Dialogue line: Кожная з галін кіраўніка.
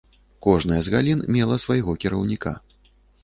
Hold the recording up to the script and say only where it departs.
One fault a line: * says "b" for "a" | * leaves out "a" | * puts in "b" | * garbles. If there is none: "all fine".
* puts in "мела свайго"